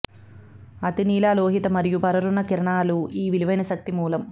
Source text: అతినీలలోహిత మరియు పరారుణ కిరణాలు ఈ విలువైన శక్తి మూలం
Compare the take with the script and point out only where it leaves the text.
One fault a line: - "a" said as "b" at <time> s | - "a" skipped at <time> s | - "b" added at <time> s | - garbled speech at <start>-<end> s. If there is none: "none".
none